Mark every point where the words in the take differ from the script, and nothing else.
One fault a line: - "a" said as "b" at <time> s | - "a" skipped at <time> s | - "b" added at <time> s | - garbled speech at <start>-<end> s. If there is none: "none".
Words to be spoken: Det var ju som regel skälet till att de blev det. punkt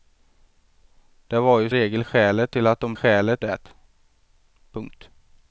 - "som" skipped at 1.7 s
- "blev" said as "skälet" at 2.9 s